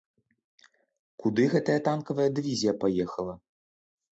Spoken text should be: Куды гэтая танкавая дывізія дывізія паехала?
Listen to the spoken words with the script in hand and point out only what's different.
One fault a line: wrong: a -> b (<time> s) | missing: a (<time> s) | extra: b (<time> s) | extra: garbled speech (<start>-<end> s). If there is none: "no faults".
missing: дывізія (2.7 s)